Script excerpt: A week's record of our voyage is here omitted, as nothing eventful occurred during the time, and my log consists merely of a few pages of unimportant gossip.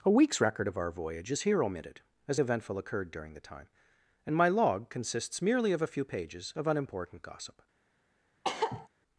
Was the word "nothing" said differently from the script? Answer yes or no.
yes